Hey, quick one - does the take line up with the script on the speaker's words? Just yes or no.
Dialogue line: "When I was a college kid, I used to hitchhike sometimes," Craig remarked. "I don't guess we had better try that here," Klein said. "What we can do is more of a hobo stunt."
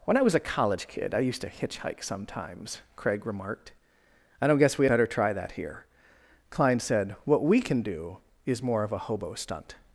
no